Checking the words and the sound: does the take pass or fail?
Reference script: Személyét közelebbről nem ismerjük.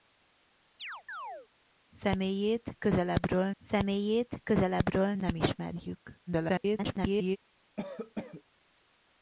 fail